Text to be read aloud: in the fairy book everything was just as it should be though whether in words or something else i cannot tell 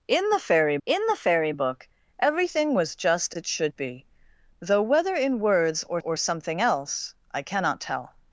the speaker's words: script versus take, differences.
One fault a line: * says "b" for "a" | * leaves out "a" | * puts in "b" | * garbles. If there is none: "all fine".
* puts in "in the fairy"
* leaves out "as"
* puts in "or"